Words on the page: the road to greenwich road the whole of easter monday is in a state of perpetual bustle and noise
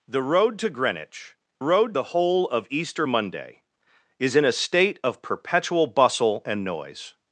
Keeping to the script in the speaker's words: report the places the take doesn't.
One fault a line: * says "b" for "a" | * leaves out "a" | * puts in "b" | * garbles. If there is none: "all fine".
all fine